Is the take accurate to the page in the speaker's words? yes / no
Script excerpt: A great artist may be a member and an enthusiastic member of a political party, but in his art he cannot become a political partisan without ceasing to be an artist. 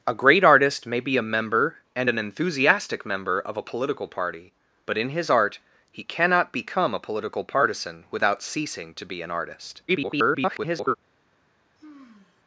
no